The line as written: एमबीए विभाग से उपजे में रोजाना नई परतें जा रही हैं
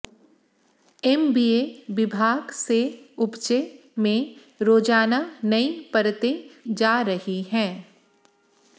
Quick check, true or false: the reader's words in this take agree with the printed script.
true